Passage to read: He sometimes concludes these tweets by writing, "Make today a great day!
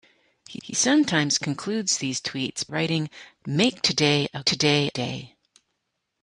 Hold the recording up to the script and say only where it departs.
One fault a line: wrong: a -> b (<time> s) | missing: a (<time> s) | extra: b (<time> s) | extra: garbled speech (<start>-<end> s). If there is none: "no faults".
extra: he (0.6 s)
missing: by (2.7 s)
wrong: great -> today (4.4 s)